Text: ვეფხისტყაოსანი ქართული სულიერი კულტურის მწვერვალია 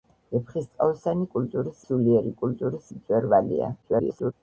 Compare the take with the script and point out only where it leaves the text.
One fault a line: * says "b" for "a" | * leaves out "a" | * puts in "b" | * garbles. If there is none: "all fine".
* says "კულტურის" for "ქართული"
* garbles